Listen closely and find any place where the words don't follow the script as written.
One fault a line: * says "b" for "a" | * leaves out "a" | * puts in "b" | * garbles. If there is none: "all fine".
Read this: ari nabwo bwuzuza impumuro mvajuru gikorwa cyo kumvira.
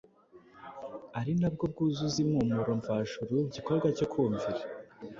all fine